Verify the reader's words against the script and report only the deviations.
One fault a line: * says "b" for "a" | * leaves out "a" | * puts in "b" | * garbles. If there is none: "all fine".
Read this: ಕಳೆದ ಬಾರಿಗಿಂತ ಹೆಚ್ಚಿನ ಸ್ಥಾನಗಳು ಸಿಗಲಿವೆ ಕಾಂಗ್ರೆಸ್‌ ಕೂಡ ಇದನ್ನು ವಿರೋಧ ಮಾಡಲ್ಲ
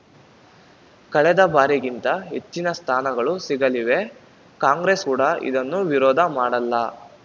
all fine